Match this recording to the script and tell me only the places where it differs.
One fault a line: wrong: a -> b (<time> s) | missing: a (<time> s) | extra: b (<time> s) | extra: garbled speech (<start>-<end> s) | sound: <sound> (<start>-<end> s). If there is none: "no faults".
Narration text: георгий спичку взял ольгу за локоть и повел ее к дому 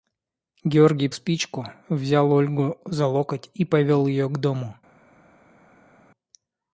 no faults